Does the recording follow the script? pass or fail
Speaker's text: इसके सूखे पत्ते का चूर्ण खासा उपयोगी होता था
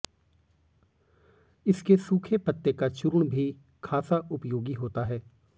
fail